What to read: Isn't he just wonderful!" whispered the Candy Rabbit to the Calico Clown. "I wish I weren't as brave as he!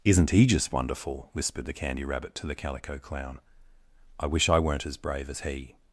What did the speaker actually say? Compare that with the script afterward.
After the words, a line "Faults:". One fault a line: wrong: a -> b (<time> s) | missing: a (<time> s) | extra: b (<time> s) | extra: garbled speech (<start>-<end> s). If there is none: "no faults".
Isn't he just wonderful!" whispered the Candy Rabbit to the Calico Clown. "I wish I weren't as brave as he!
Faults:
no faults